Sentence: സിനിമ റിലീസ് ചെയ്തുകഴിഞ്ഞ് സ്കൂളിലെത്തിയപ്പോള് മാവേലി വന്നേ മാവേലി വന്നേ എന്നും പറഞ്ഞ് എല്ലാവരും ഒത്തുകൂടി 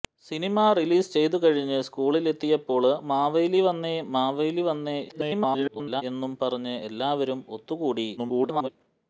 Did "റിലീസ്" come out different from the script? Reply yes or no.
no